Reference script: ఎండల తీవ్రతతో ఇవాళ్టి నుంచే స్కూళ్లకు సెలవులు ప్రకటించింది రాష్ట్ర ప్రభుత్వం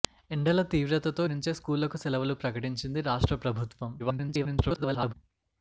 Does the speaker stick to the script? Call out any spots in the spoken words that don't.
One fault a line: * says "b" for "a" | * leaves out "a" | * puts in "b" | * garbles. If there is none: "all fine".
* leaves out "ఇవాళ్టి"
* garbles